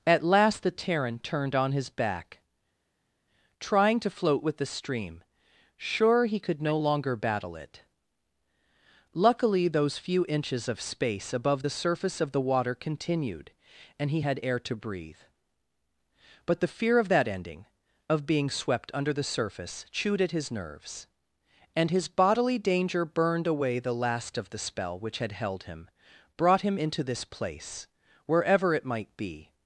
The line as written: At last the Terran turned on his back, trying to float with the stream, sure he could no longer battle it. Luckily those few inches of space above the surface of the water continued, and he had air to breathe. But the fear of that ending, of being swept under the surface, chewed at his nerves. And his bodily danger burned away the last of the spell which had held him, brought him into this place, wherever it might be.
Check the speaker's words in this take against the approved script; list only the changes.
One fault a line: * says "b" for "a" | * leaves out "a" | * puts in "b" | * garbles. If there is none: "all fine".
all fine